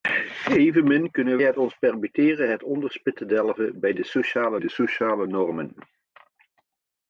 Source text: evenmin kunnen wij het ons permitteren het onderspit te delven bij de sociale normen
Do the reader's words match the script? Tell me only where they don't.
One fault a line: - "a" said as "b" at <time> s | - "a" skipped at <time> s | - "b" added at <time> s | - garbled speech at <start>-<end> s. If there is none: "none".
- "wij" skipped at 1.4 s
- "de sociale" added at 4.6 s